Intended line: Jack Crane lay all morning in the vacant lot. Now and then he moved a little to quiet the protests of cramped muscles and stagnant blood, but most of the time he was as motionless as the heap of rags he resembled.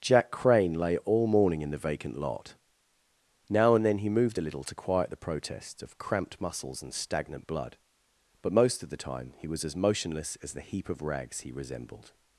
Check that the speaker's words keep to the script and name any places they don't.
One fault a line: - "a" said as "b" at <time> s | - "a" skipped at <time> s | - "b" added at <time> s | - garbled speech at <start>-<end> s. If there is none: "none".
none